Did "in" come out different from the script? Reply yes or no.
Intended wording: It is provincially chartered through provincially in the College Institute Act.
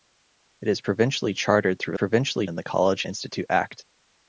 no